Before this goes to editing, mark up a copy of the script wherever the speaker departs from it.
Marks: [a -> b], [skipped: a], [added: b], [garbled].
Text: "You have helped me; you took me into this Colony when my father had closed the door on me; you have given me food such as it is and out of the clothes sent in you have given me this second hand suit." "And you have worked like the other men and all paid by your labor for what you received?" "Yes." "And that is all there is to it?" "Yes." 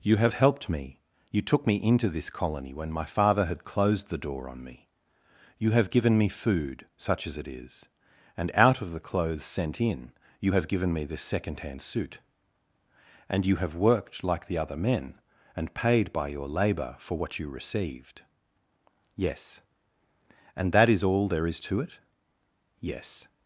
"You have helped me; you took me into this Colony when my father had closed the door on me; you have given me food such as it is and out of the clothes sent in you have given me this second hand suit." "And you have worked like the other men and [skipped: all] paid by your labor for what you received?" "Yes." "And that is all there is to it?" "Yes."